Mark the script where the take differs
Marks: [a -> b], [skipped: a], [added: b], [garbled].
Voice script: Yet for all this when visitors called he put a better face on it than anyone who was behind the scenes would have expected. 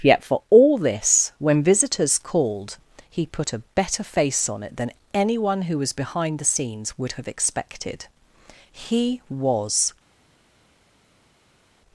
Yet for all this when visitors called he put a better face on it than anyone who was behind the scenes would have expected. [added: He was]